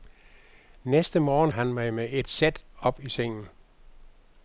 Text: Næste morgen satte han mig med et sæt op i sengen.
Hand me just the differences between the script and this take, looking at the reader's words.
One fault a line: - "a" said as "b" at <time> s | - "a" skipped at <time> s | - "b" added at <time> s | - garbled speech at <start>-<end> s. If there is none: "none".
- "satte" skipped at 1.5 s